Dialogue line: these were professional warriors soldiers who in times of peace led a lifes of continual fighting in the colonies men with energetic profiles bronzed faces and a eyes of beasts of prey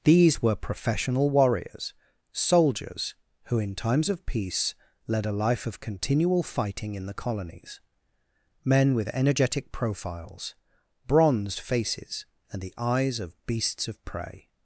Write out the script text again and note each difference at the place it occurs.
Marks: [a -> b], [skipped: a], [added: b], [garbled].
these were professional warriors soldiers who in times of peace led a [lifes -> life] of continual fighting in the colonies men with energetic profiles bronzed faces and [a -> the] eyes of beasts of prey